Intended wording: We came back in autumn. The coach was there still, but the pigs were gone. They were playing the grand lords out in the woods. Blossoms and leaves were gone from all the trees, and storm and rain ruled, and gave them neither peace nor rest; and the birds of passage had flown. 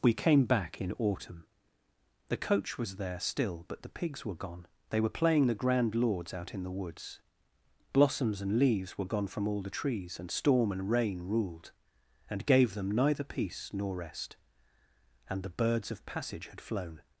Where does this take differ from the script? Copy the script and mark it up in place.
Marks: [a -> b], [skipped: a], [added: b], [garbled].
We came back in autumn. The coach was there still, but the pigs were gone. They were playing the grand lords out in the woods. Blossoms and leaves were gone from all the trees, and storm and rain ruled, and gave them neither peace nor rest; and the birds of passage had flown.